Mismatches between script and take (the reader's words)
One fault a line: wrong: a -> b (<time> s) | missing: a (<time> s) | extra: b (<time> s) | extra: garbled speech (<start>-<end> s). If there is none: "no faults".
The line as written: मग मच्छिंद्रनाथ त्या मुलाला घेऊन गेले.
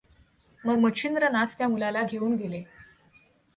no faults